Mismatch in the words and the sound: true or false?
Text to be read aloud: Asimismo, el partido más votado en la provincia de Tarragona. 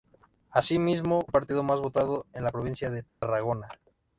true